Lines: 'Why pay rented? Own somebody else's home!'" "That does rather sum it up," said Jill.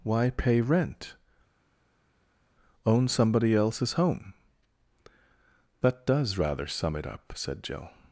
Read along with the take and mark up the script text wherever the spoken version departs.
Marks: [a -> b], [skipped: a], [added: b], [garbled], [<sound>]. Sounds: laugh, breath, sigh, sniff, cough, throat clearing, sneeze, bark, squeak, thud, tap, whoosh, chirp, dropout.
'Why pay [rented? -> rent] Own somebody else's home!'" "That does rather sum it up," said Jill.